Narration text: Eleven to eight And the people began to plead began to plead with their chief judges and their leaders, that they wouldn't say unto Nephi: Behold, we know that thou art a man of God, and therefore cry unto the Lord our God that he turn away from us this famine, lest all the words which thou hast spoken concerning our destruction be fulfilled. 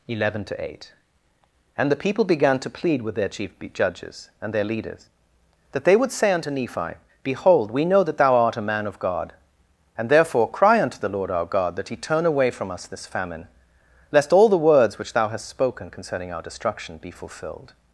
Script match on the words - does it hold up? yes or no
no